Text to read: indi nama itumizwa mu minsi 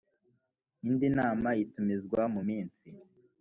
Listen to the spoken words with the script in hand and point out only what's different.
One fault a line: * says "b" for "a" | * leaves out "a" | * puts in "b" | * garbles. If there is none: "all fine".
all fine